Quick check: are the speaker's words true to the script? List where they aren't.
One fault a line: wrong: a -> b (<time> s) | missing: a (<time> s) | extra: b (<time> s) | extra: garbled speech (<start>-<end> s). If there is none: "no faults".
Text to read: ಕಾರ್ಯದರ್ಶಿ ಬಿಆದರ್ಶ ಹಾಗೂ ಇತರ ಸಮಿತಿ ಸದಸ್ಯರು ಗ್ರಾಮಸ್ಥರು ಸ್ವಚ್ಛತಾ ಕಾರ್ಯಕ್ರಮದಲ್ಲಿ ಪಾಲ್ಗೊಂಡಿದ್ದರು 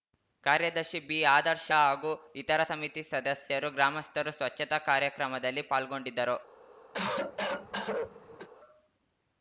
no faults